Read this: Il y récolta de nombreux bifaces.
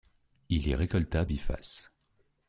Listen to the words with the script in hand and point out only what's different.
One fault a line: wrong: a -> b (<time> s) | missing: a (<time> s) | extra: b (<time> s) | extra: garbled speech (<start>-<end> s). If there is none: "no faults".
missing: de nombreux (1.2 s)